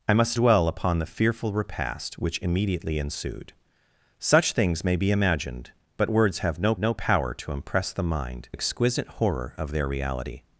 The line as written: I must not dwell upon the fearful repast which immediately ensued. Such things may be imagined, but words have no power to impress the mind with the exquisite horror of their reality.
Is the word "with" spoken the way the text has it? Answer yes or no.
no